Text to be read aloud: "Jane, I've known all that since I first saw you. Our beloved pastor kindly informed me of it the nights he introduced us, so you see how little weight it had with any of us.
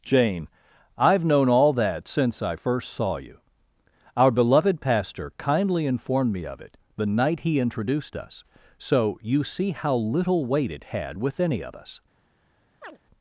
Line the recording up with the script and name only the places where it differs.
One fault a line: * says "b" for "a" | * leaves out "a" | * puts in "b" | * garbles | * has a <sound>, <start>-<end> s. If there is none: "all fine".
* says "night" for "nights"
* has a chirp, 12.8-13.0 s